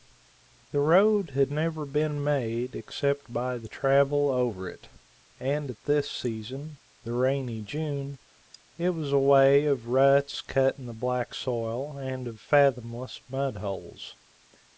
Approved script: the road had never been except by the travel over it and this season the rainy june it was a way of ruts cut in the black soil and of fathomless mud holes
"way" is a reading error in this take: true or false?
false